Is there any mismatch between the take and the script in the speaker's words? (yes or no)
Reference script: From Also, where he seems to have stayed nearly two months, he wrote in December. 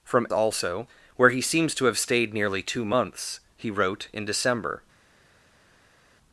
no